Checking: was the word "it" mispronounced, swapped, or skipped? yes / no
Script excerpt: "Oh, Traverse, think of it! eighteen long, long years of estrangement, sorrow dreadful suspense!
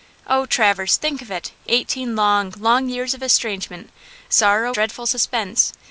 no